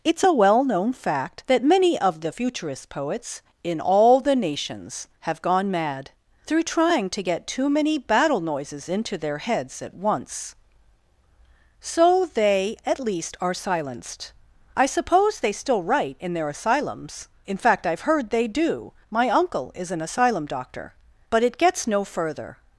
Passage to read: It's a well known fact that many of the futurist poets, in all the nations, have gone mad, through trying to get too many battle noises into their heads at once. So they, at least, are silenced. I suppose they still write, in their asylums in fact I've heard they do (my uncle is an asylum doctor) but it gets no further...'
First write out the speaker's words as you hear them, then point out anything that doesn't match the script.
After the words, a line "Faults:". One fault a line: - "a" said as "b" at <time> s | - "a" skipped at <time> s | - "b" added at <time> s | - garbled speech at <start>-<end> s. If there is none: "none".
It's a well known fact that many of the futurist poets, in all the nations, have gone mad, through trying to get too many battle noises into their heads at once. So they, at least, are silenced. I suppose they still write, in their asylums in fact I've heard they do (my uncle is an asylum doctor) but it gets no further...'
Faults:
none